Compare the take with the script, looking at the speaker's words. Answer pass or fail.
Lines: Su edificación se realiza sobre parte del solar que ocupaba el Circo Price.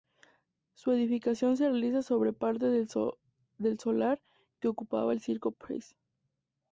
pass